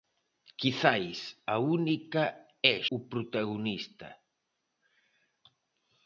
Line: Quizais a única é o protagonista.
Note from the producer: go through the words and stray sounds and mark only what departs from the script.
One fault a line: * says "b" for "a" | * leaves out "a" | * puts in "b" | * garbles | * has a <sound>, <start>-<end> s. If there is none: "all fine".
all fine